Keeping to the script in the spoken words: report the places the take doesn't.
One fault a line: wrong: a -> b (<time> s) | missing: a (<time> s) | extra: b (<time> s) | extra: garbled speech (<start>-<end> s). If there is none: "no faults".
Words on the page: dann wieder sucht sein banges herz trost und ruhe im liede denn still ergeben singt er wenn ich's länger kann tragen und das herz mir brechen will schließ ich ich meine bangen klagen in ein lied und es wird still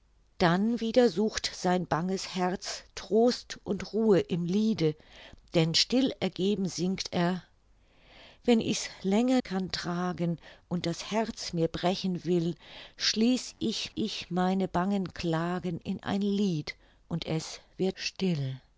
no faults